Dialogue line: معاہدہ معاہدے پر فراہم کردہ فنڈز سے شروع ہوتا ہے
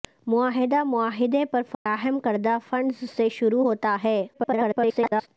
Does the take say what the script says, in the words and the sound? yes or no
no